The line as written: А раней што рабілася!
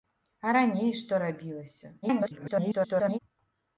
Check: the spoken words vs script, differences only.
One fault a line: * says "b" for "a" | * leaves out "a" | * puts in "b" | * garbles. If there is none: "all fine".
* garbles